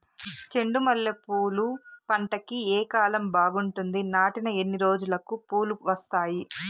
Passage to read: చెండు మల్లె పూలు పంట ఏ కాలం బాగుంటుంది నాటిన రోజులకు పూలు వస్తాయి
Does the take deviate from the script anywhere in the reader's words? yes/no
yes